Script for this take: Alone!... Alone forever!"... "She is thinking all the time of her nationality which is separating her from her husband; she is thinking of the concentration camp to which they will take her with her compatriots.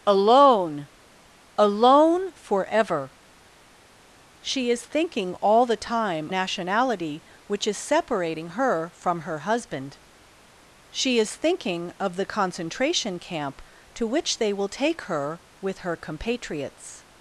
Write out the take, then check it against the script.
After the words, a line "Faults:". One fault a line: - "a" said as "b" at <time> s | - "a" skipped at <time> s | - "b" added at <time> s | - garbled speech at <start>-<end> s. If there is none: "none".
Alone!... Alone forever!"... "She is thinking all the time nationality which is separating her from her husband; she is thinking of the concentration camp to which they will take her with her compatriots.
Faults:
- "of her" skipped at 6.3 s